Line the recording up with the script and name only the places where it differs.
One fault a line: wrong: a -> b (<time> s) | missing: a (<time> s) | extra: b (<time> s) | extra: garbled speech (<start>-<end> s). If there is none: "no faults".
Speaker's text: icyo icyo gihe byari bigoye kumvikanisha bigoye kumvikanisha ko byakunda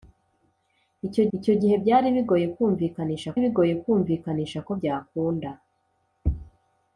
no faults